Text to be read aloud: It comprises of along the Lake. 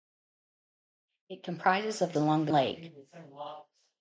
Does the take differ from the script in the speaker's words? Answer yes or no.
no